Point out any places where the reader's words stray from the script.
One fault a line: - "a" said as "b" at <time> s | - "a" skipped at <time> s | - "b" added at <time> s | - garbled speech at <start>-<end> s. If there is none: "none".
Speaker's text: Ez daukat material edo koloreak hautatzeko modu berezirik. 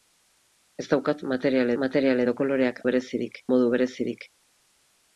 - "material" added at 1.8 s
- "hautatzeko" said as "berezirik" at 2.9 s